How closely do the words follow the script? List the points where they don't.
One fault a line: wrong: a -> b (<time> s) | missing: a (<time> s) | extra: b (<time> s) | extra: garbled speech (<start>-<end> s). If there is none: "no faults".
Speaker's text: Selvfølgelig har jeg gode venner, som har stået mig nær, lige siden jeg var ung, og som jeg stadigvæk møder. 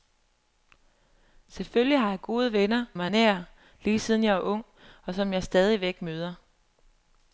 missing: som har stået (2.9 s)